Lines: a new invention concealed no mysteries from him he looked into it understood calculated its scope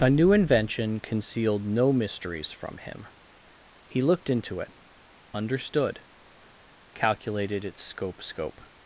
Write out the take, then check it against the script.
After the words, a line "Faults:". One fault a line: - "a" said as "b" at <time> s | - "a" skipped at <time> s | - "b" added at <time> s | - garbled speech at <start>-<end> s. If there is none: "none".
a new invention concealed no mysteries from him he looked into it understood calculated its scope scope
Faults:
- "scope" added at 8.2 s